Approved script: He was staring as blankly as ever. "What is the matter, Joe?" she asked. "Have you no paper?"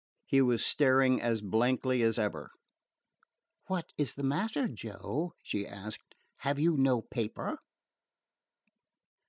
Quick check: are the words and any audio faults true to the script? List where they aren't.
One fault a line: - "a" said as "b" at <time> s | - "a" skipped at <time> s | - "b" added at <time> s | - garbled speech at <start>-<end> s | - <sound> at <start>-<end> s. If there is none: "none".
none